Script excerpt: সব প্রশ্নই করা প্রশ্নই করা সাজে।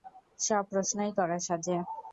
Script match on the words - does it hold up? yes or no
no